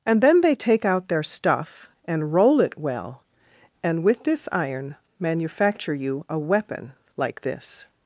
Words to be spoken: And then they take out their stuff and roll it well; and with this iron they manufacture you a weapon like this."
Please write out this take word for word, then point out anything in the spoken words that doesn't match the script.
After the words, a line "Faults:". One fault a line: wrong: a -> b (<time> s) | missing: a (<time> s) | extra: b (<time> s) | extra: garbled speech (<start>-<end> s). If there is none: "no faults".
And then they take out their stuff and roll it well; and with this iron manufacture you a weapon like this."
Faults:
missing: they (5.0 s)